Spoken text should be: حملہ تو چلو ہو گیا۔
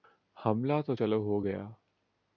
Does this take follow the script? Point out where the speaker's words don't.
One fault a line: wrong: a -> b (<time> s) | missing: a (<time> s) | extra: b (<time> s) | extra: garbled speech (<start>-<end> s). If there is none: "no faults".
no faults